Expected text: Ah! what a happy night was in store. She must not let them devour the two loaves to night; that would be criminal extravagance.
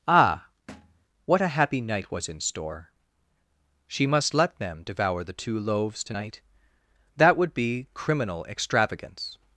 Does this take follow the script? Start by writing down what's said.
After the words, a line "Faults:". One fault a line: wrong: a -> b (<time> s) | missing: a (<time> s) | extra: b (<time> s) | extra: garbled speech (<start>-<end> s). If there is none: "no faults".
Ah! what a happy night was in store. She must let them devour the two loaves to night; that would be criminal extravagance.
Faults:
missing: not (4.3 s)